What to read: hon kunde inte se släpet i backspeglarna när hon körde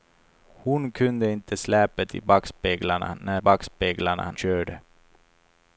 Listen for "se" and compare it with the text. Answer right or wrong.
wrong